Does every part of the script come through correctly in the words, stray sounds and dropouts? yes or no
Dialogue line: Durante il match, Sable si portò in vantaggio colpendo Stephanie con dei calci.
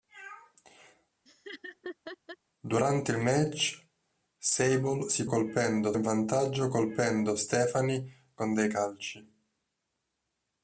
no